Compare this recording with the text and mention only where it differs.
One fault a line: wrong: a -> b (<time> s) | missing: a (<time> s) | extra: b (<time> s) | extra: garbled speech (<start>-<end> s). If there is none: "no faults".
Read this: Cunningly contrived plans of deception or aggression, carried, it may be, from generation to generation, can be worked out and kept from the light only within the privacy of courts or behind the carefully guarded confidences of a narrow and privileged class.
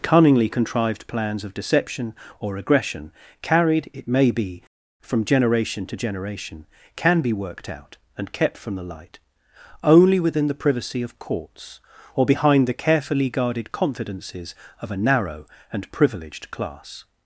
no faults